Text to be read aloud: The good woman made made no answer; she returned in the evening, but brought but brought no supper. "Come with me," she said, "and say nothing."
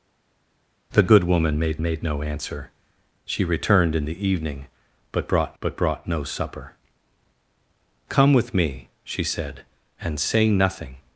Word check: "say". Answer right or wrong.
right